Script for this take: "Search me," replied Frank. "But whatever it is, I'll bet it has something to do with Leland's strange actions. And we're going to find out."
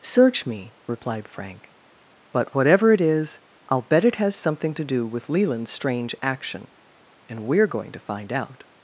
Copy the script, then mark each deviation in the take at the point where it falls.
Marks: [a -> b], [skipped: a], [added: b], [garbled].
"Search me," replied Frank. "But whatever it is, I'll bet it has something to do with Leland's strange [actions. -> action] And we're going to find out."